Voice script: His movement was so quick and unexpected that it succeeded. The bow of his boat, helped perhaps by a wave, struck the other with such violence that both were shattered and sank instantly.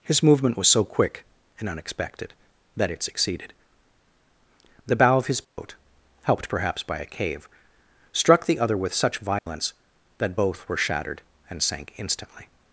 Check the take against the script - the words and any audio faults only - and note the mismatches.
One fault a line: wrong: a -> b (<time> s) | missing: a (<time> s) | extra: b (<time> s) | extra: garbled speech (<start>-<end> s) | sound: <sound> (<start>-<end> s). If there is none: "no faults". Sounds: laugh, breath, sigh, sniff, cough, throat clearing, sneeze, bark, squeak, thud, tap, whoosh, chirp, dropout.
sound: dropout (5.4-5.6 s)
wrong: wave -> cave (7.0 s)
sound: dropout (9.4-9.5 s)